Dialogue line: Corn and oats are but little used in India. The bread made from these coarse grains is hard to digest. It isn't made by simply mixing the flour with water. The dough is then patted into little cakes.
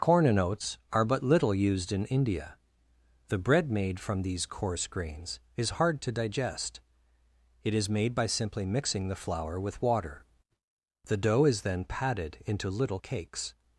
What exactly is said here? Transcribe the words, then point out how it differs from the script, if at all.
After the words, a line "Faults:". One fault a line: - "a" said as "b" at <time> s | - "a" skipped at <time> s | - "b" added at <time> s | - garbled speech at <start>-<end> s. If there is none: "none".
Corn and oats are but little used in India. The bread made from these coarse grains is hard to digest. It is made by simply mixing the flour with water. The dough is then patted into little cakes.
Faults:
- "isn't" said as "is" at 7.8 s